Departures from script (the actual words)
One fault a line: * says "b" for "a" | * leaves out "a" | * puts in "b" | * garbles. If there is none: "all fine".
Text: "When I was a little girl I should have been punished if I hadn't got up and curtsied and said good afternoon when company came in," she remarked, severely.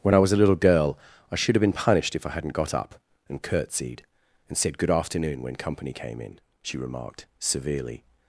all fine